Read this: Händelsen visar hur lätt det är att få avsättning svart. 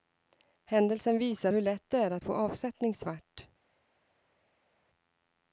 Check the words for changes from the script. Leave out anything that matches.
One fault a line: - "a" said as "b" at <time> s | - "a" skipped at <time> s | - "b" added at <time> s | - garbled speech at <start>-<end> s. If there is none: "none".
none